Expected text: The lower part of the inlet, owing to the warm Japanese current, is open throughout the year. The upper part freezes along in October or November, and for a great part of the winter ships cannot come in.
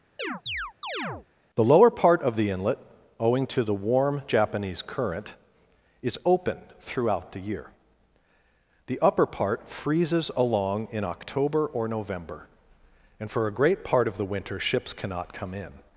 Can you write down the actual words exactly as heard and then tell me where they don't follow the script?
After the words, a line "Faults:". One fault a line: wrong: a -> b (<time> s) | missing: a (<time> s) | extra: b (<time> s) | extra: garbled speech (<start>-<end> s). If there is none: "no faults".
The lower part of the inlet, owing to the warm Japanese current, is open throughout the year. The upper part freezes along in October or November, and for a great part of the winter ships cannot come in.
Faults:
no faults